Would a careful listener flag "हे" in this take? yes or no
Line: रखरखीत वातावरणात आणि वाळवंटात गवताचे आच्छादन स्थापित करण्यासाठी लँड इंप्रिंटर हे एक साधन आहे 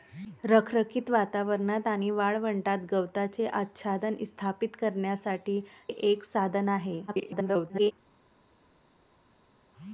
yes